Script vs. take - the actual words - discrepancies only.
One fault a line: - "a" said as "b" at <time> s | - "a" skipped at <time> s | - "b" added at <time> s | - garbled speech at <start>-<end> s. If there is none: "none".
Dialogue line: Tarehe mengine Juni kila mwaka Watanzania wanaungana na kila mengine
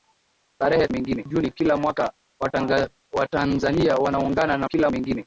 none